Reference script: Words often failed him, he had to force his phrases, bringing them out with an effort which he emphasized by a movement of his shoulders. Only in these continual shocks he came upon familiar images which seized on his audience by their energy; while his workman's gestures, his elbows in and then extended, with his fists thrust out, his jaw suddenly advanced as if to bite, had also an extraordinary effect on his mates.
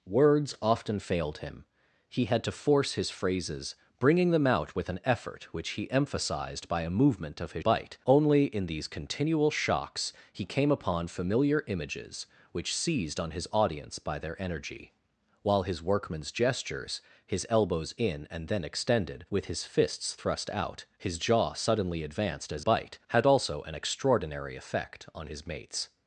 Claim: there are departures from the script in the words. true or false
true